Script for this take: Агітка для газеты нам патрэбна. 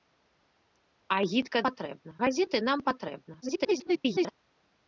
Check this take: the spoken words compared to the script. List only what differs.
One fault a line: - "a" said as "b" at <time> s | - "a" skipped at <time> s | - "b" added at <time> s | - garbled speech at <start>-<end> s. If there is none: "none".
- "для" said as "патрэбна" at 1.7 s
- garbled speech at 3.4-4.3 s